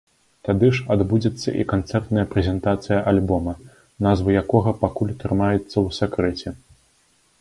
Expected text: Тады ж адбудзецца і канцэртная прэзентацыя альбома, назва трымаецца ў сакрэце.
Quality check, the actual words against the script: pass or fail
fail